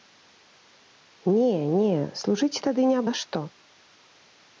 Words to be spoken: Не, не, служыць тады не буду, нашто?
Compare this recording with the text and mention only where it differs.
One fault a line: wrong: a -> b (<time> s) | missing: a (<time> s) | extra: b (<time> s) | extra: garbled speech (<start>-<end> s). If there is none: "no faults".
missing: буду (3.0 s)